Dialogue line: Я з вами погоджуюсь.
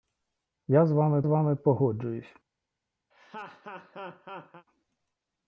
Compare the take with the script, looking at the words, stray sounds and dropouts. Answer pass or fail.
fail